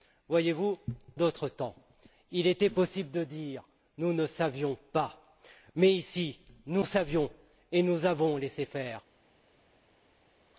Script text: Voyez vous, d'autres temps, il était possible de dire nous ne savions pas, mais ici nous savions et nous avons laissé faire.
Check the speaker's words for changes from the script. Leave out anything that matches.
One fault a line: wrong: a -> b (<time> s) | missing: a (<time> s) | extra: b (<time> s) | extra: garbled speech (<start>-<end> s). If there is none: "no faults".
no faults